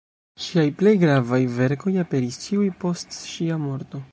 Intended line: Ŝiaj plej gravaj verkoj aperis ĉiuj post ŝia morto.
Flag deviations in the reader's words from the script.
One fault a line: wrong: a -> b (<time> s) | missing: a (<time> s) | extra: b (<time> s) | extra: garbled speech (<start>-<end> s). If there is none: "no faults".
no faults